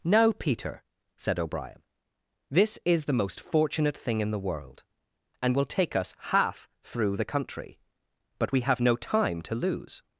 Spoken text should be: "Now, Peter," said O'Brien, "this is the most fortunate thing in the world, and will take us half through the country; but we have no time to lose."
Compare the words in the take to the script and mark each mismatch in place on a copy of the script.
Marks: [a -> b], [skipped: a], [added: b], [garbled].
"Now, Peter," said O'Brien, "this is the most fortunate thing in the world, and will take us half through the country; but we have no time to lose."